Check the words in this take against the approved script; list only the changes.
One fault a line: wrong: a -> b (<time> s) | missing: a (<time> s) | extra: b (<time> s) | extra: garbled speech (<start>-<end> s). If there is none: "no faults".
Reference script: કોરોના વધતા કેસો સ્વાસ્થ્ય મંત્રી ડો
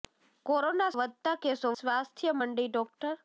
no faults